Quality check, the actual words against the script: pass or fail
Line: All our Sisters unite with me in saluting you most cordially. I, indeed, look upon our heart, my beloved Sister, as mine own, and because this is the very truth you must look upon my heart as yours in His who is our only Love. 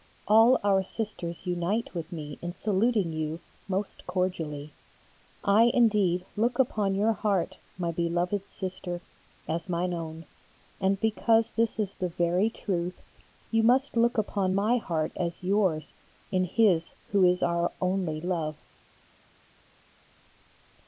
fail